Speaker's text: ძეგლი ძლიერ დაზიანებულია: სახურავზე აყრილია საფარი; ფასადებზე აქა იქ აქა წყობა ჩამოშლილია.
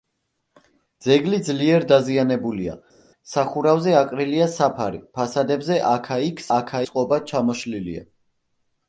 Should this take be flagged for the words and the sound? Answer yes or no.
no